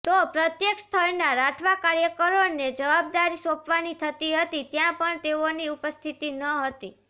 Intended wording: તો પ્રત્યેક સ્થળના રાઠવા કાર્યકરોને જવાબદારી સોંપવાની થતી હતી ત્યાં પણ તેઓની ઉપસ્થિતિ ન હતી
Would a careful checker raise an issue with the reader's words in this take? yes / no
no